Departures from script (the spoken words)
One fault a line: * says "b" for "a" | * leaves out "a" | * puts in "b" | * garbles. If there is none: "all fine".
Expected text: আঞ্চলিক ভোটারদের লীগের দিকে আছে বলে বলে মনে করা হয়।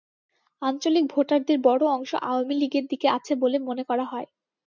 * puts in "বড় অংশ আওয়ামী"
* leaves out "বলে"